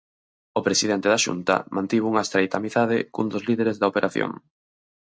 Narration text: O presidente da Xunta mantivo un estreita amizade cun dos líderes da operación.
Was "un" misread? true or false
true